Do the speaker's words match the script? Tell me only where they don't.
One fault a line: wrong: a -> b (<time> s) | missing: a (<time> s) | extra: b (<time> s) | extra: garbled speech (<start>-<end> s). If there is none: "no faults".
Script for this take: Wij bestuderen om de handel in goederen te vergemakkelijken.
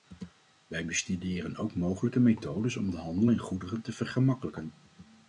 extra: ook mogelijke methodes (1.6 s)